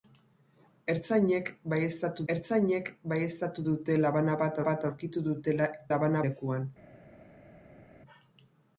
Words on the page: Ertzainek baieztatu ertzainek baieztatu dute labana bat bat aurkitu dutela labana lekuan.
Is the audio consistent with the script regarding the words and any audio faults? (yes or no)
yes